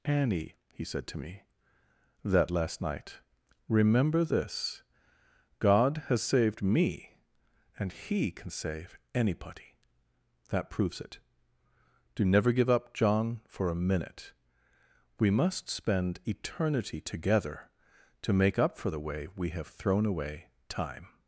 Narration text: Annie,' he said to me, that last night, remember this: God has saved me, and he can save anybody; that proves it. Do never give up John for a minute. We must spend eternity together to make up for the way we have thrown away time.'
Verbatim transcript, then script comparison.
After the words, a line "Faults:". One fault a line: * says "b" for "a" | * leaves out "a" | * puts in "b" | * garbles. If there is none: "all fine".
Annie,' he said to me, that last night, remember this: God has saved me, and he can save anybody; that proves it. Do never give up John for a minute. We must spend eternity together to make up for the way we have thrown away time.'
Faults:
all fine